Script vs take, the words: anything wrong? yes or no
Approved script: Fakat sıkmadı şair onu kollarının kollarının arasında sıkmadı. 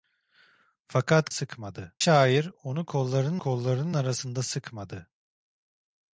no